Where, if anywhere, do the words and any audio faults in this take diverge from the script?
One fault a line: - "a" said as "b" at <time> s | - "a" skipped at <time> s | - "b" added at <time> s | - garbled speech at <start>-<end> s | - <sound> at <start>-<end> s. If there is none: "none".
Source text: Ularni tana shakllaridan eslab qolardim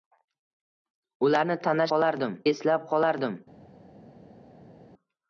- "shakllaridan" said as "qolardim" at 1.9 s